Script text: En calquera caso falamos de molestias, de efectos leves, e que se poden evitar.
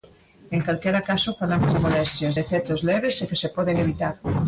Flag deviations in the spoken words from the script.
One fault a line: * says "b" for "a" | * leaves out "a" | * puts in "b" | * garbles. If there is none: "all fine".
all fine